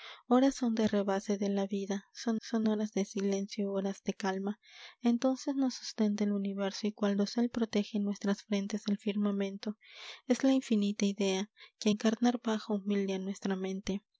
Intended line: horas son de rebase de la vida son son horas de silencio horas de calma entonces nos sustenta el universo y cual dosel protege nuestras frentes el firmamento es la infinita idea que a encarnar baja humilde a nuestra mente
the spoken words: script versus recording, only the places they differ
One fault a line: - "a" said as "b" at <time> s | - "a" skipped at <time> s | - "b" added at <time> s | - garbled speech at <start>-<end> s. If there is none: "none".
none